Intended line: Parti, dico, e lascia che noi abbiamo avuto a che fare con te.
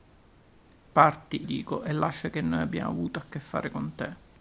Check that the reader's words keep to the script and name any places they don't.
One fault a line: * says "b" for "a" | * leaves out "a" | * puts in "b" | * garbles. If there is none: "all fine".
all fine